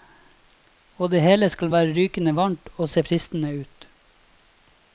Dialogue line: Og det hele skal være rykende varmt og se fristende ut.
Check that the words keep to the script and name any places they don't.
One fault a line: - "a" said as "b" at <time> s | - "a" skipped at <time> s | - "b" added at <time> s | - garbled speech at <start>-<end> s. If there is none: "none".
none